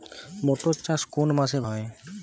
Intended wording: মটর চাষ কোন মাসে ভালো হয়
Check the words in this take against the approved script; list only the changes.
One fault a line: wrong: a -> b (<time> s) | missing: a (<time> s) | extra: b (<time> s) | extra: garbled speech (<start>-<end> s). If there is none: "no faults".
missing: ভালো (1.6 s)